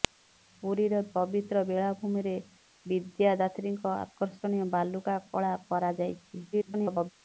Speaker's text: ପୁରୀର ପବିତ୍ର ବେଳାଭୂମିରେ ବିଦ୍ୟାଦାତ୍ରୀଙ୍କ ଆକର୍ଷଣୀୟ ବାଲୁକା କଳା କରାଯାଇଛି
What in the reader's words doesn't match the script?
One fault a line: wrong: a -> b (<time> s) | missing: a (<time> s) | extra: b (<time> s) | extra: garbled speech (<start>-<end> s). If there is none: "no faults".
extra: garbled speech (6.5-7.1 s)